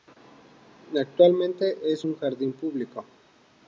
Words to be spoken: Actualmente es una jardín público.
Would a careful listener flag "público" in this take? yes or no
no